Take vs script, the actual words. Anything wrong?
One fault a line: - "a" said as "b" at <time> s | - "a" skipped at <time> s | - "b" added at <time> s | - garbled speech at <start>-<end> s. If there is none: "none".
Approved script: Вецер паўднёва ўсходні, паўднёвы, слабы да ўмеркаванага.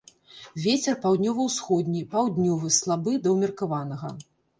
none